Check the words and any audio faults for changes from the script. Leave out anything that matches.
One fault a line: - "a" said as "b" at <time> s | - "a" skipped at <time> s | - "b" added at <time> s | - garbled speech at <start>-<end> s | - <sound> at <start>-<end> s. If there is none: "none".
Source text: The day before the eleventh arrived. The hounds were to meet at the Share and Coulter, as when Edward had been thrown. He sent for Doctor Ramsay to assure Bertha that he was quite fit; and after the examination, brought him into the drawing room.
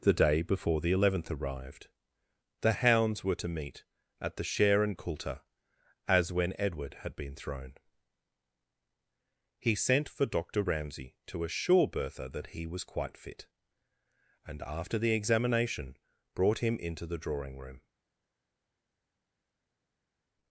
none